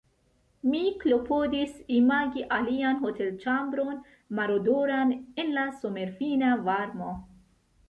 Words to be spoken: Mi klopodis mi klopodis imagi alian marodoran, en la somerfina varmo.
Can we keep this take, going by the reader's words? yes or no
no